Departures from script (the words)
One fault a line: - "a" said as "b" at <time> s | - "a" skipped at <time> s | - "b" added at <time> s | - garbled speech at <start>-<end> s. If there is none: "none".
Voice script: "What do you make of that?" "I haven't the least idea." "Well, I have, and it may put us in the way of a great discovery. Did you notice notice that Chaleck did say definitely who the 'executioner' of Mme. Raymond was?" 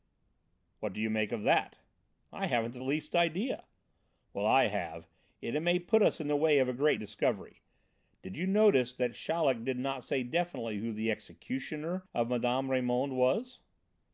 - "notice" skipped at 8.9 s
- "not" added at 9.8 s